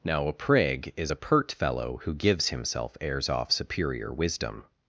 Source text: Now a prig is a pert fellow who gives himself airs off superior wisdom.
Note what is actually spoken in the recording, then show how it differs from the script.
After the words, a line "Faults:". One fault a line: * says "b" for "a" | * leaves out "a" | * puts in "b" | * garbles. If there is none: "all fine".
Now a prig is a pert fellow who gives himself airs off superior wisdom.
Faults:
all fine